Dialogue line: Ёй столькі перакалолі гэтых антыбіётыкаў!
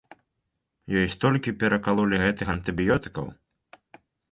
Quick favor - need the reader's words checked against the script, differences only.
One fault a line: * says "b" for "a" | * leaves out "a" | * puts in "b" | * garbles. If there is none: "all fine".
all fine